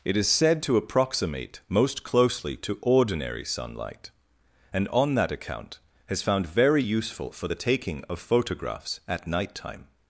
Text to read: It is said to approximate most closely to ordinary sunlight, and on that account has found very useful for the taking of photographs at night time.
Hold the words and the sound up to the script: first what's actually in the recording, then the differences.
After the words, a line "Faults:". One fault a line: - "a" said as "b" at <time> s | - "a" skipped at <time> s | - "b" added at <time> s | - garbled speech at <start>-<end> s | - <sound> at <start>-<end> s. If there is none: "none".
It is said to approximate most closely to ordinary sunlight, and on that account has found very useful for the taking of photographs at night time.
Faults:
none